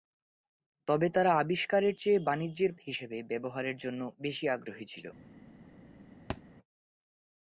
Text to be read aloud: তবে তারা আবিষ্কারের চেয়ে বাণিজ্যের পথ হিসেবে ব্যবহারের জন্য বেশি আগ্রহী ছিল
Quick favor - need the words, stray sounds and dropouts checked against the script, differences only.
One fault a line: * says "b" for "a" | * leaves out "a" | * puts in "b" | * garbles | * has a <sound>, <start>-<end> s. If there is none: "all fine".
* leaves out "পথ"
* has a thud, 6.3-6.4 s